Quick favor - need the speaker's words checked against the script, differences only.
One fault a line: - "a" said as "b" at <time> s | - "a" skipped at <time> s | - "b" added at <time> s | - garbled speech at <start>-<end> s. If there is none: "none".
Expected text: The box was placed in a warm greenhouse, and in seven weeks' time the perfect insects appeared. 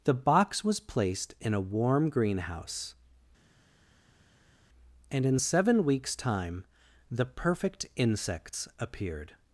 none